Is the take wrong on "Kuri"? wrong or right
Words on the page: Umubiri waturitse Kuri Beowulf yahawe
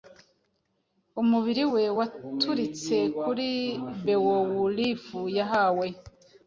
right